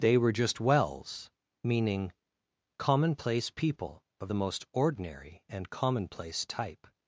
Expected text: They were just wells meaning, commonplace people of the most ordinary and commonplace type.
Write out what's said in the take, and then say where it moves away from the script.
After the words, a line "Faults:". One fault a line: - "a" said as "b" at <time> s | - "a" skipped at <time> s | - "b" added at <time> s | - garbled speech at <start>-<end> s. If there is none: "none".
They were just wells meaning, commonplace people of the most ordinary and commonplace type.
Faults:
none